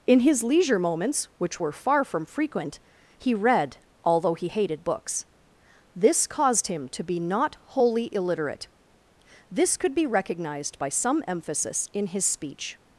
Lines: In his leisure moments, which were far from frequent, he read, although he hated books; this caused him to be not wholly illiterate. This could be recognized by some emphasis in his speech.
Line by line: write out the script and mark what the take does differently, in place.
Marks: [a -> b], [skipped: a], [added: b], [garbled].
In his leisure moments, which were far from frequent, he read, although he hated books; this caused him to be not wholly illiterate. This could be recognized by some emphasis in his speech.